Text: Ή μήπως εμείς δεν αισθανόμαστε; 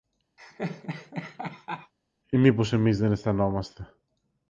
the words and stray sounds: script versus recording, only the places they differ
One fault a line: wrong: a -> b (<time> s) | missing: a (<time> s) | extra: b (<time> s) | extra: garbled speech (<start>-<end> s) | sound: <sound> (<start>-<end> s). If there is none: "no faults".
sound: laugh (0.4-1.9 s)